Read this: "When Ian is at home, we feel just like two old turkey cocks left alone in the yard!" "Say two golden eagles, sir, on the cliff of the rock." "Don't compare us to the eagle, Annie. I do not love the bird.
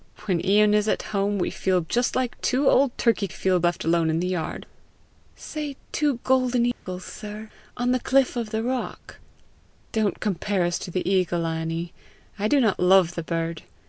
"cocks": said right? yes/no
no